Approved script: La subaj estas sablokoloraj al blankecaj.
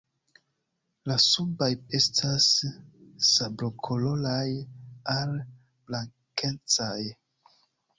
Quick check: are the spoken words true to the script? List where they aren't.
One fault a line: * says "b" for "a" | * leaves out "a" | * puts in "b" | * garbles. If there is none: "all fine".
all fine